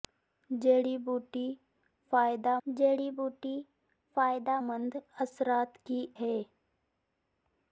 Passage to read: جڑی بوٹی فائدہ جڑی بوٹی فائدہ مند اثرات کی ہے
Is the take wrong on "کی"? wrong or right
right